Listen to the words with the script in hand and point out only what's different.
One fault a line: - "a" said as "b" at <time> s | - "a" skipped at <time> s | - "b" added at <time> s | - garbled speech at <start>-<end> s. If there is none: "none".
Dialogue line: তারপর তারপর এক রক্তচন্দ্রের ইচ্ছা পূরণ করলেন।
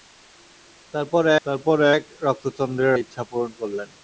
none